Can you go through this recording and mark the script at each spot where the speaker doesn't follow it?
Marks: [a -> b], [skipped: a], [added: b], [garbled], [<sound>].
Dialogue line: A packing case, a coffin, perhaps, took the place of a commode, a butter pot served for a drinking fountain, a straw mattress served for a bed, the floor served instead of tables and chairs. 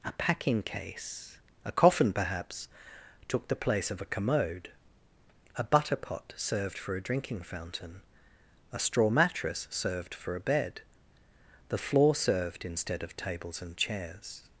A packing case, a coffin, perhaps, took the place of a commode, a butter pot served for a drinking fountain, a straw mattress served for a bed, the floor served instead of tables and chairs.